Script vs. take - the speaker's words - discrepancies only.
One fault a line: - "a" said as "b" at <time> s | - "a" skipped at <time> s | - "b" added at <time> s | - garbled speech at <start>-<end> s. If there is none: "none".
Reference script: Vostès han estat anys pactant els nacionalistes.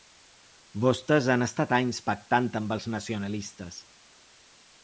- "amb" added at 2.6 s